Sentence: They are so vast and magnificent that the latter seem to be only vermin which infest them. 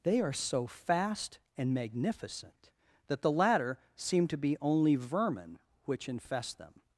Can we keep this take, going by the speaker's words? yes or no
no